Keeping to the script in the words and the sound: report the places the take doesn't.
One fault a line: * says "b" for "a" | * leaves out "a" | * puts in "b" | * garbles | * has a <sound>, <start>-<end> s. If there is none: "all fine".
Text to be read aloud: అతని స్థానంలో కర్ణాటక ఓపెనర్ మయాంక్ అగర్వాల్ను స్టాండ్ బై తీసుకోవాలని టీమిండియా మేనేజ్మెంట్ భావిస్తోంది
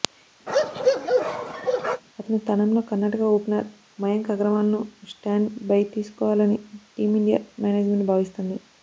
* has a bark, 0.5-2.0 s